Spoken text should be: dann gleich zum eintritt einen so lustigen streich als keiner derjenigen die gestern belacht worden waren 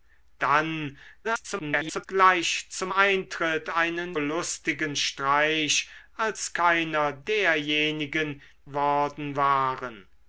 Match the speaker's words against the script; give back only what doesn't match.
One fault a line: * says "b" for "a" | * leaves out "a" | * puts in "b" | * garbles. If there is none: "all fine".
* garbles
* leaves out "so"
* leaves out "die gestern belacht"